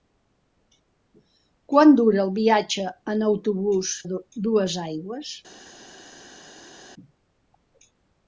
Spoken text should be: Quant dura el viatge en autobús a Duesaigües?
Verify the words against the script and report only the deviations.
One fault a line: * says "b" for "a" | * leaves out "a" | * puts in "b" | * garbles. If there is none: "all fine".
all fine